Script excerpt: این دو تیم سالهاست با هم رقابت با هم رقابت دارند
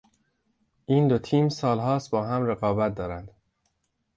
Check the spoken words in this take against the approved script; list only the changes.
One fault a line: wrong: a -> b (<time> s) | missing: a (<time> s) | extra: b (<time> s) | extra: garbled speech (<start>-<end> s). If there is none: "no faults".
missing: با هم رقابت (3.0 s)